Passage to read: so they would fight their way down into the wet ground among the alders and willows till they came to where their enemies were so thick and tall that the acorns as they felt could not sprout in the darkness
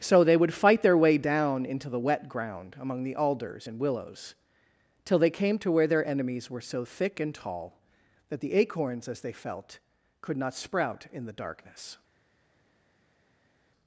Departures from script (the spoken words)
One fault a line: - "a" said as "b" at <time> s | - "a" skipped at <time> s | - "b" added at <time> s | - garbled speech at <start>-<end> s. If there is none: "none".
none